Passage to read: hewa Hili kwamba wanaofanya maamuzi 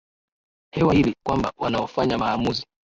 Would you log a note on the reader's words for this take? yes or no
no